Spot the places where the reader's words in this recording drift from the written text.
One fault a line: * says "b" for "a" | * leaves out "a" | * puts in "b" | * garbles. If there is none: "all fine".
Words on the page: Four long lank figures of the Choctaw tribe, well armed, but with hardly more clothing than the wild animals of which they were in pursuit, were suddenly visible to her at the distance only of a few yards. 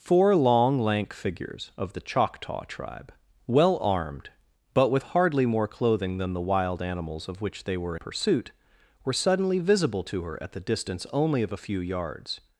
* leaves out "in"